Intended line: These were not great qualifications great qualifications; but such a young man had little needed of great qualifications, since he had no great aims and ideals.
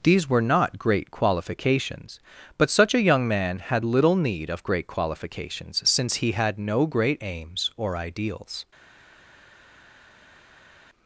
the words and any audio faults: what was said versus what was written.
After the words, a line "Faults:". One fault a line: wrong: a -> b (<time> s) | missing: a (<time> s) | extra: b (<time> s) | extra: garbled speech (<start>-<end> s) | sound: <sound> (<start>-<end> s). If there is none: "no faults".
These were not great qualifications; but such a young man had little need of great qualifications, since he had no great aims or ideals.
Faults:
missing: great qualifications (2.2 s)
wrong: needed -> need (4.2 s)
wrong: and -> or (7.8 s)